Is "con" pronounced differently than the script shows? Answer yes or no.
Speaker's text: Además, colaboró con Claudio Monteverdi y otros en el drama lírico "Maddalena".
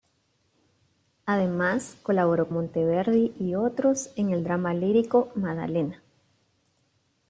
yes